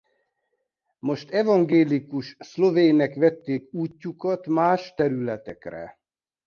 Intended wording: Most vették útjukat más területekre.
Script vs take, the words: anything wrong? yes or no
yes